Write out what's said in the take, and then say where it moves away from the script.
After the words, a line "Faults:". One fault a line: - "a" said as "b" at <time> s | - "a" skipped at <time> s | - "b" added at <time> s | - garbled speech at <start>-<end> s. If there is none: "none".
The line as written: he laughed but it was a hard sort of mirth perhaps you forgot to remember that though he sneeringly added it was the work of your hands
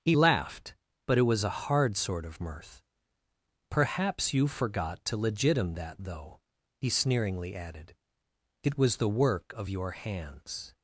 he laughed but it was a hard sort of mirth perhaps you forgot to legitim that though he sneeringly added it was the work of your hands
Faults:
- "remember" said as "legitim" at 5.2 s